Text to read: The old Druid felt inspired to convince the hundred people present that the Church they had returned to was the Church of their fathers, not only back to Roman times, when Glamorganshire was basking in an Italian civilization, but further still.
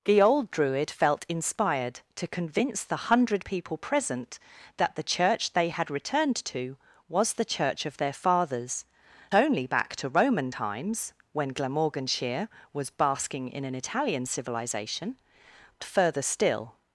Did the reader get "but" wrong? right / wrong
wrong